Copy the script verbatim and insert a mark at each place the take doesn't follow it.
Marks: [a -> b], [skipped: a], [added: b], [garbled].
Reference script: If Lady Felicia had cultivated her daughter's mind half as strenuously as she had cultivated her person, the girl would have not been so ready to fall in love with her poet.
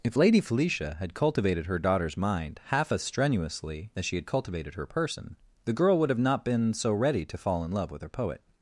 If Lady Felicia had cultivated her daughter's mind half as strenuously as she had cultivated her person, the girl would have not been so ready to fall in love with her poet.